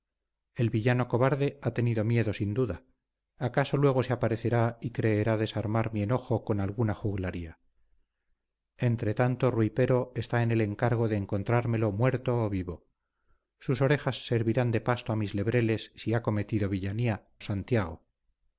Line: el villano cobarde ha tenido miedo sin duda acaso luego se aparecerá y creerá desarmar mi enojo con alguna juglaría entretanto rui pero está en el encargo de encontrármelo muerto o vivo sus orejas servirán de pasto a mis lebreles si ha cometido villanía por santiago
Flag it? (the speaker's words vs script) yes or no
yes